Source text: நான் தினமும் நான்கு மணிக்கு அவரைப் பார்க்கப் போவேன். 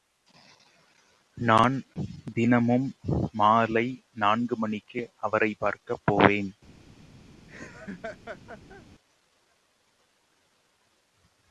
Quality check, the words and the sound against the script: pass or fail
fail